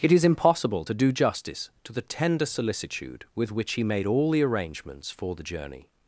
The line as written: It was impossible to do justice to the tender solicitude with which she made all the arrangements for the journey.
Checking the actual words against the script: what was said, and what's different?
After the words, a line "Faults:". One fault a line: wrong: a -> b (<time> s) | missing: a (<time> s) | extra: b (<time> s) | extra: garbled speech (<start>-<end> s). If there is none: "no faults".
It is impossible to do justice to the tender solicitude with which he made all the arrangements for the journey.
Faults:
wrong: was -> is (0.1 s)
wrong: she -> he (3.7 s)